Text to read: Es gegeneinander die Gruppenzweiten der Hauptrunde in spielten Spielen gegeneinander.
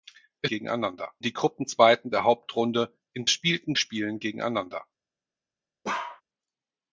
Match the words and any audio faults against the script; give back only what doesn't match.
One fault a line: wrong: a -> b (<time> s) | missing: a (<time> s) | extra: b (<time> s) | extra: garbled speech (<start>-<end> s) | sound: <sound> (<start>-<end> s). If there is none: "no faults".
sound: bark (5.8-6.2 s)